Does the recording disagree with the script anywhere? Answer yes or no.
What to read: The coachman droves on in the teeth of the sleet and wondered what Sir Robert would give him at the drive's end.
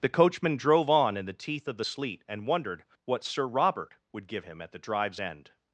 yes